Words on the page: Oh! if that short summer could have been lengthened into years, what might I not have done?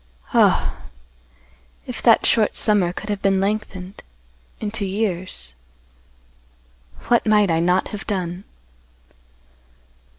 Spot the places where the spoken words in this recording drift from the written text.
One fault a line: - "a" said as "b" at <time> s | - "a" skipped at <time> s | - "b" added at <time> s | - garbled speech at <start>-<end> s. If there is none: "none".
none